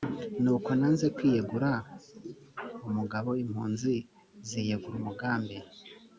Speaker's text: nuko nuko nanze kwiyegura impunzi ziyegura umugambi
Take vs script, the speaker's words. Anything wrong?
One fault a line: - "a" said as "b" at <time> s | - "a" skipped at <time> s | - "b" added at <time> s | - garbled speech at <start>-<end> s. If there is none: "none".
- "nuko" skipped at 0.7 s
- "umugabo" added at 2.9 s